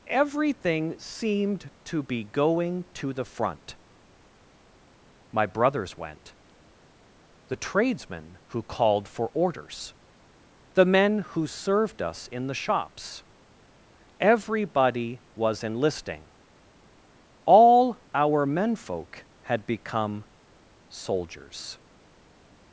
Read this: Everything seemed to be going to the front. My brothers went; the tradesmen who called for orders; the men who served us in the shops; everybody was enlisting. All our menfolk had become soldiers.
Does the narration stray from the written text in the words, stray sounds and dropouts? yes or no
no